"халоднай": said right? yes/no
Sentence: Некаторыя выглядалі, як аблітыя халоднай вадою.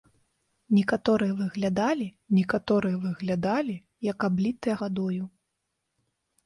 no